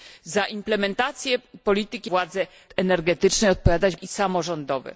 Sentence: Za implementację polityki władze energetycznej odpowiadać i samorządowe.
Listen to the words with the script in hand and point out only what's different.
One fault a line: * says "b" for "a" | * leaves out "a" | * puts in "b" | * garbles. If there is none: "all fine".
all fine